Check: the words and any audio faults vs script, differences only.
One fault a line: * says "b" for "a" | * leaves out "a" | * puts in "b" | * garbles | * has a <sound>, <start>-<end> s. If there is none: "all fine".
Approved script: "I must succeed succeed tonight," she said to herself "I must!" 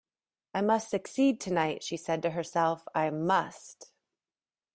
* leaves out "succeed"